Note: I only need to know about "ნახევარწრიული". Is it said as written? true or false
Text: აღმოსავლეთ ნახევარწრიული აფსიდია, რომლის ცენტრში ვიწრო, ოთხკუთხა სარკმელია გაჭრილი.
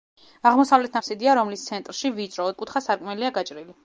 false